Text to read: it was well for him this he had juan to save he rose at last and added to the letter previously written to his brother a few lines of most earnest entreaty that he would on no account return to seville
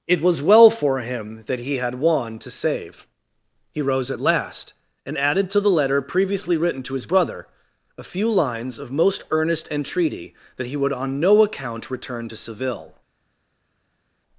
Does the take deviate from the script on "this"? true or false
true